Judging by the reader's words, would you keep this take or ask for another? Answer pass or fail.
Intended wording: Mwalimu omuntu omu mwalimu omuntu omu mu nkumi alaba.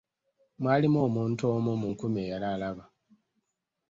fail